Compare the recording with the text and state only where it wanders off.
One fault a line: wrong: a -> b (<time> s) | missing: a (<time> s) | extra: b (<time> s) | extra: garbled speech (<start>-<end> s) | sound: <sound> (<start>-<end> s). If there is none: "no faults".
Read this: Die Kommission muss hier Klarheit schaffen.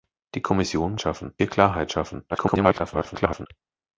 wrong: muss -> schaffen (1.0 s)
extra: garbled speech (2.3-3.5 s)